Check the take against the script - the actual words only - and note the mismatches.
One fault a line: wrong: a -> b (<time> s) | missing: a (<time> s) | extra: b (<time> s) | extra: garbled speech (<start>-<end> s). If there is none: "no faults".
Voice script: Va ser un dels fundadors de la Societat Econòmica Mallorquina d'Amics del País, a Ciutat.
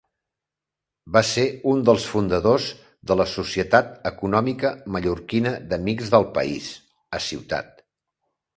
no faults